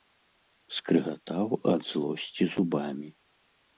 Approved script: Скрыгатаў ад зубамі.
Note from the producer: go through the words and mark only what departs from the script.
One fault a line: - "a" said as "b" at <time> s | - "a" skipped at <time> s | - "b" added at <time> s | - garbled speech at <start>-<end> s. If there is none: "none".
- "злосці" added at 1.9 s